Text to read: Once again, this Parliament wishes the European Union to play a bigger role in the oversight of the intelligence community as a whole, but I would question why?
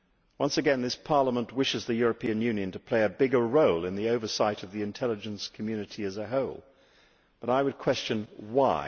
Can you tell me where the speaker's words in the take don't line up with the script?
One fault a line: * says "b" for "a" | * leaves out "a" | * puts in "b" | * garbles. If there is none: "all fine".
all fine